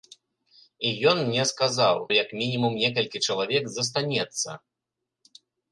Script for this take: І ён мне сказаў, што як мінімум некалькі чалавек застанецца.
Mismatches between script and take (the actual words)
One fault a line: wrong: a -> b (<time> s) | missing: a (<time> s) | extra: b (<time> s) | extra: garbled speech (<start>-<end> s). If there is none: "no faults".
missing: што (1.9 s)